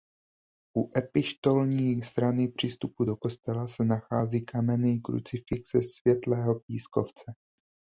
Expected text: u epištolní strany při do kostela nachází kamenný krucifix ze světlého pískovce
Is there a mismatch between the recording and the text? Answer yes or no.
yes